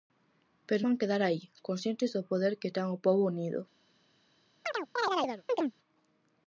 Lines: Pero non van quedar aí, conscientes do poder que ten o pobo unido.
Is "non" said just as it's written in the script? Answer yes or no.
no